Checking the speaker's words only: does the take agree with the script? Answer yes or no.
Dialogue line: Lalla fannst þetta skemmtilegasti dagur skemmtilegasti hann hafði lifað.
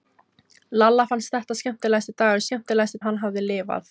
yes